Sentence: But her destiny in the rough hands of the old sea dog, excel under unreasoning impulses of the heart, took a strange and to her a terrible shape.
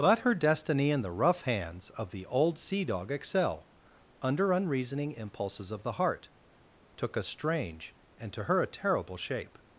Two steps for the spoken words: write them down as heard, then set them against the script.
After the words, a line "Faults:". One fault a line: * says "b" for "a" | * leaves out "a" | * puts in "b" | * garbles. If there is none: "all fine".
But her destiny in the rough hands of the old sea dog, excel under unreasoning impulses of the heart, took a strange and to her a terrible shape.
Faults:
all fine